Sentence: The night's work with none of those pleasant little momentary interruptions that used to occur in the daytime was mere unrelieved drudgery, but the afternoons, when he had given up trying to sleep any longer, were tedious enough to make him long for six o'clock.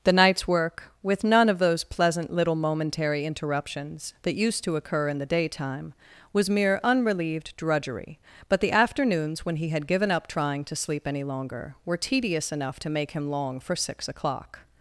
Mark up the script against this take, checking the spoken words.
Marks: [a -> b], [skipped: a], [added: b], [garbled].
The night's work with none of those pleasant little momentary interruptions that used to occur in the daytime was mere unrelieved drudgery, but the afternoons, when he had given up trying to sleep any longer, were tedious enough to make him long for six o'clock.